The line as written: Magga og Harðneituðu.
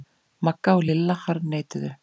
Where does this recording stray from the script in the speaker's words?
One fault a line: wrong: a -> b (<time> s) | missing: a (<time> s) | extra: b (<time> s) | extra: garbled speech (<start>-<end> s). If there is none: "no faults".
extra: Lilla (0.9 s)